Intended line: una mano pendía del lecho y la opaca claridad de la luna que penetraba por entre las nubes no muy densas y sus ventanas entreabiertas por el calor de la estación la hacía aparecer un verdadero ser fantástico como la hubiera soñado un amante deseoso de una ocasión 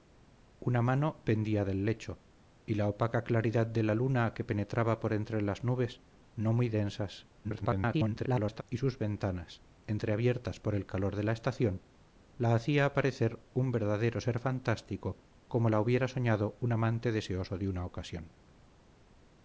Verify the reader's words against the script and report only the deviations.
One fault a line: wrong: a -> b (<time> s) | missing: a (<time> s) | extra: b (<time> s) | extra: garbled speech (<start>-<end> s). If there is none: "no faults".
extra: garbled speech (7.4-8.6 s)